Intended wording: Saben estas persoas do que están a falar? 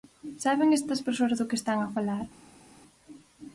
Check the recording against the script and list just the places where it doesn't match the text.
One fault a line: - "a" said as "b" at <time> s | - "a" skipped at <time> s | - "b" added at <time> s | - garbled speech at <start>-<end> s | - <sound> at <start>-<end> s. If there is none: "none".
none